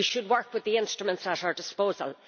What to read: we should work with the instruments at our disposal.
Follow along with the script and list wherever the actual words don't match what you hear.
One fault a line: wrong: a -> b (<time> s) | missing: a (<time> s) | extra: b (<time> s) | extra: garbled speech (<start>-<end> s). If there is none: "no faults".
no faults